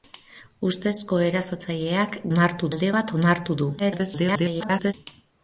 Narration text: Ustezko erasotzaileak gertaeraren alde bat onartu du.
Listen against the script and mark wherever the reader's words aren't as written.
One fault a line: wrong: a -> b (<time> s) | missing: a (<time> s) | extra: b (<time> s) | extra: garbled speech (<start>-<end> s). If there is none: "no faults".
wrong: gertaeraren -> onartu (2.4 s)
extra: garbled speech (3.8-4.9 s)